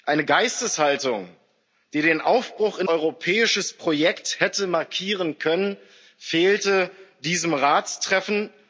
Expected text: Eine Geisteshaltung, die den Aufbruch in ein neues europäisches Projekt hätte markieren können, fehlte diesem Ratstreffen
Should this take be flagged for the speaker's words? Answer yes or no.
yes